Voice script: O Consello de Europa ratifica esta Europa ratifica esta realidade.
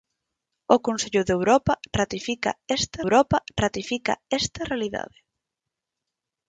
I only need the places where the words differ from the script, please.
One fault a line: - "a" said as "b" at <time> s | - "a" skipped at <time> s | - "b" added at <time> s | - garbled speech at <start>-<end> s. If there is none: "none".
none